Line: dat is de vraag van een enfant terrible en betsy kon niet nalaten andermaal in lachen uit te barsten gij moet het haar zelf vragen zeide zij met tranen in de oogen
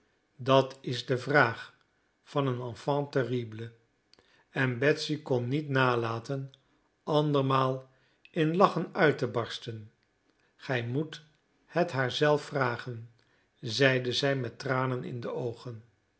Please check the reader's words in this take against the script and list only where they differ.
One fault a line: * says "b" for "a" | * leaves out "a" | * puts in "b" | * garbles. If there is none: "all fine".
all fine